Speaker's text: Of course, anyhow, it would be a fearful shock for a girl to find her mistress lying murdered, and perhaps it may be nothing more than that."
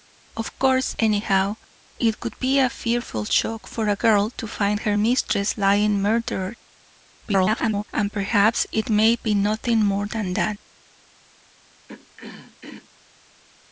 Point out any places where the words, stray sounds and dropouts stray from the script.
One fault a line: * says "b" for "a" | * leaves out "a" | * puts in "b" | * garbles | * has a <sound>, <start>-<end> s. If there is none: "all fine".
* garbles
* has a throat clearing, 11.9-12.9 s